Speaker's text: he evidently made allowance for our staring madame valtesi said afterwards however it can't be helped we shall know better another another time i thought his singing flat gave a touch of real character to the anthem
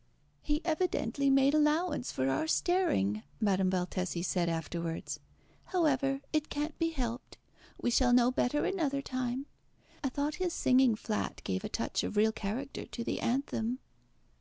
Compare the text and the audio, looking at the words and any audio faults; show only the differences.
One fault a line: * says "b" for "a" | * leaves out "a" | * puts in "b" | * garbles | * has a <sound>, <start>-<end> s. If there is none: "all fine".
* leaves out "another"